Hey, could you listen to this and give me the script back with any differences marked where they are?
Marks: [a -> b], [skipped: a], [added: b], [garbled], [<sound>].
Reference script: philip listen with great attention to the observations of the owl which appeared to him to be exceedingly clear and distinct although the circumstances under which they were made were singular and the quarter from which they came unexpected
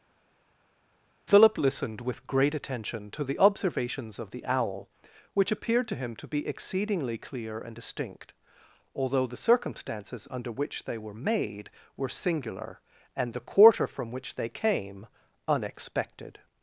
philip [listen -> listened] with great attention to the observations of the owl which appeared to him to be exceedingly clear and distinct although the circumstances under which they were made were singular and the quarter from which they came unexpected